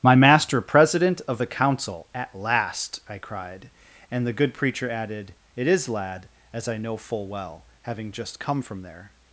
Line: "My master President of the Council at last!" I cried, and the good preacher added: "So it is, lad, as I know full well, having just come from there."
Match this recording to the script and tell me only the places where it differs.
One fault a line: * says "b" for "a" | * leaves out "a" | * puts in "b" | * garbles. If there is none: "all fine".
* leaves out "So"